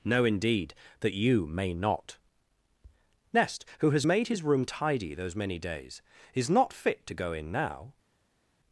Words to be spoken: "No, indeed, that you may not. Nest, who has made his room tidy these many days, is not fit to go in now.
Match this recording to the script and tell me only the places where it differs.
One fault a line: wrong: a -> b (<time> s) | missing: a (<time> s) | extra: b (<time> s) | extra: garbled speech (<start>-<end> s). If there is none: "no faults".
wrong: these -> those (5.1 s)